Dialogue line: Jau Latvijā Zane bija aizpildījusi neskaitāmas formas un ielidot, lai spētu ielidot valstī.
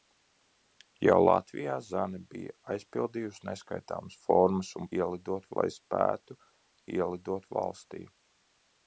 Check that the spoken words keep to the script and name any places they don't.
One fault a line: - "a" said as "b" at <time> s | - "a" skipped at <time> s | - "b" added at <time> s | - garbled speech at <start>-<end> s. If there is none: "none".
none